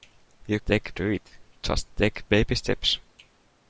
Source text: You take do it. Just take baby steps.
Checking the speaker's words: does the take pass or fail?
pass